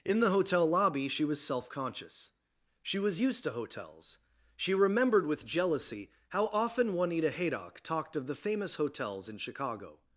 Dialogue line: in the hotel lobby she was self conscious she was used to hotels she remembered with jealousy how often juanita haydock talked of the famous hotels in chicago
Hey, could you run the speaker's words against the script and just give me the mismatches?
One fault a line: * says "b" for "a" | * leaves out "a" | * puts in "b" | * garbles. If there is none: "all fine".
all fine